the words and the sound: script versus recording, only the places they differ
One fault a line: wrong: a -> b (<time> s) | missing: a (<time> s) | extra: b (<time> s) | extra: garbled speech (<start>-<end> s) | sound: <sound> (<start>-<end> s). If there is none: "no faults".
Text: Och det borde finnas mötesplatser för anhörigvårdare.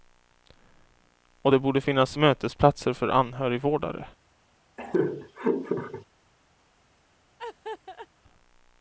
sound: laugh (4.8-6.1 s)
sound: laugh (7.4-8.1 s)